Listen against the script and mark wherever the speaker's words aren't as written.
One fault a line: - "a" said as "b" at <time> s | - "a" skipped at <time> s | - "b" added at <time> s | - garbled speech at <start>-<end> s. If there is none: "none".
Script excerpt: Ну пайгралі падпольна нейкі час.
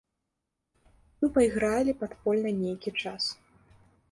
none